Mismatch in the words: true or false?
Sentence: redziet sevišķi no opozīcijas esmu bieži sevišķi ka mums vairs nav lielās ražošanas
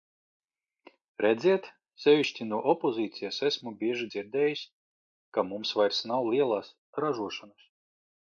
true